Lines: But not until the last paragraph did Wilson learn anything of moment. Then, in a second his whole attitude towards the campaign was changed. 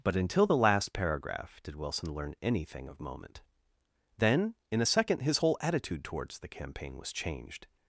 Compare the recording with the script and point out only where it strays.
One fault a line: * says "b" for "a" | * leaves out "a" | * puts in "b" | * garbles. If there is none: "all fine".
* leaves out "not"